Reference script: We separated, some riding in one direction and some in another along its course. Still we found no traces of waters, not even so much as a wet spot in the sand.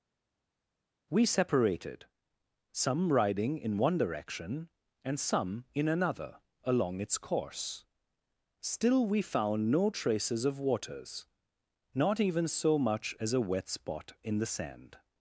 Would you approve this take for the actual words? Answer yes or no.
yes